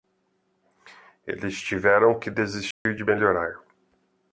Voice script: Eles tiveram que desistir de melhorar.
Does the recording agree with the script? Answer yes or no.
yes